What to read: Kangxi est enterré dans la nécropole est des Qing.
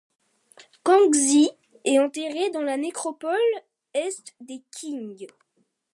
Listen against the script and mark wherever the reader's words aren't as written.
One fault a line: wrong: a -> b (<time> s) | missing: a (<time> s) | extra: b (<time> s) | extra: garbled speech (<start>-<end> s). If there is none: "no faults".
no faults